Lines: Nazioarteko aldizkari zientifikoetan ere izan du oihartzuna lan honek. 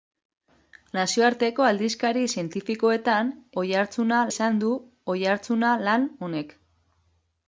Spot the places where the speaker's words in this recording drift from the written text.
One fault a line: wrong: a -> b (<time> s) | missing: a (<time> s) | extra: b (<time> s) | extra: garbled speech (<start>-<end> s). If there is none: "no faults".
wrong: ere -> oihartzuna (3.6 s)